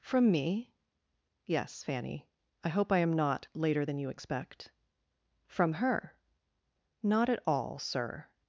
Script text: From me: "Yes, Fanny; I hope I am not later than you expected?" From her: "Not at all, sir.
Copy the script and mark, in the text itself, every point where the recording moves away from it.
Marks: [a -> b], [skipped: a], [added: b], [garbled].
From me: "Yes, Fanny; I hope I am not later than you [expected?" -> expect] From her: "Not at all, sir.